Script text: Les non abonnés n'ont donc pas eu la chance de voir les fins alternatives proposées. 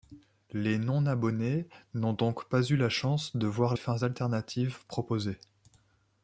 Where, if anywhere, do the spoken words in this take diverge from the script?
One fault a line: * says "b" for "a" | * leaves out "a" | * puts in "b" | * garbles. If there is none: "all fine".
* leaves out "les"